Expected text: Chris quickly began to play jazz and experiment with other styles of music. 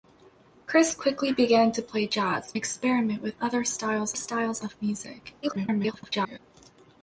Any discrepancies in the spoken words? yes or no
yes